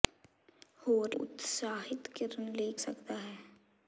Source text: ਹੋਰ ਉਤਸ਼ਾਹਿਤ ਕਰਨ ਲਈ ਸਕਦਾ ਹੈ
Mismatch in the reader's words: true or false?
false